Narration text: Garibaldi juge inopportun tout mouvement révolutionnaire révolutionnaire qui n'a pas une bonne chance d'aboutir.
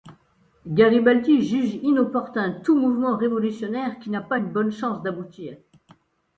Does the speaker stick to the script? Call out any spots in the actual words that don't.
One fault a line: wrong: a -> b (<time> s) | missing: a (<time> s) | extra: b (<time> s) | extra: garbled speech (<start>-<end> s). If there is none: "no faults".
missing: révolutionnaire (4.0 s)